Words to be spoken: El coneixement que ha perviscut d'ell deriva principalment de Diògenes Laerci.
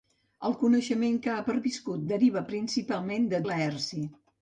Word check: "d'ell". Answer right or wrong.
wrong